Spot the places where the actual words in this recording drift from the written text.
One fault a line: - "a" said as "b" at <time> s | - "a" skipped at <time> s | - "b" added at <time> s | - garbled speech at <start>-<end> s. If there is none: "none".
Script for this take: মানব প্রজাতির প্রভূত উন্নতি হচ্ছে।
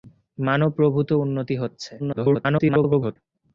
- "প্রজাতির" skipped at 0.7 s
- garbled speech at 2.0-3.2 s